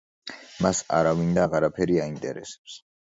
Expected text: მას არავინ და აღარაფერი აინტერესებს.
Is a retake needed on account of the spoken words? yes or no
no